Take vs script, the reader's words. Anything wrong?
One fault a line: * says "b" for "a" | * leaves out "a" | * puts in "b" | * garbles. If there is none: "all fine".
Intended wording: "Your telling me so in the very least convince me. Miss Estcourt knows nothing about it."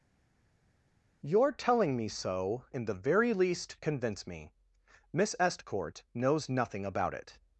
all fine